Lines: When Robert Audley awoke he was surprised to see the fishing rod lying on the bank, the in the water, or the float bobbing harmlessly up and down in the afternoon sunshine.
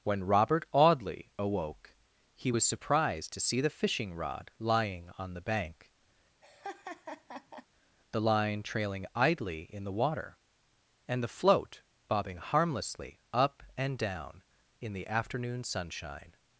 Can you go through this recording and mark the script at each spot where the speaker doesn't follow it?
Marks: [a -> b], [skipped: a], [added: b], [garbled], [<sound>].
When Robert Audley awoke he was surprised to see the fishing rod lying on the bank, [laugh] the [added: line trailing idly] in the water, [or -> and] the float bobbing harmlessly up and down in the afternoon sunshine.